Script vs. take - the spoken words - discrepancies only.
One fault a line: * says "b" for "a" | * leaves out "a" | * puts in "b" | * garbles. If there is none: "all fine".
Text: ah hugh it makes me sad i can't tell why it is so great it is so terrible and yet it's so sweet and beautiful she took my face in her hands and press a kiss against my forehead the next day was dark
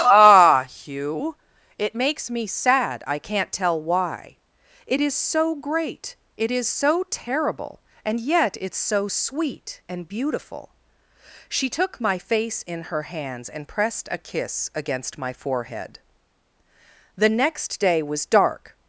* says "pressed" for "press"